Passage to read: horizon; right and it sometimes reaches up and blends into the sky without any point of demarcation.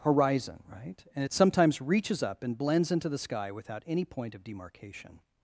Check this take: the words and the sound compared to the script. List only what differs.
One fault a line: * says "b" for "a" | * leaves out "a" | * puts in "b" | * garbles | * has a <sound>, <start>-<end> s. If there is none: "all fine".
all fine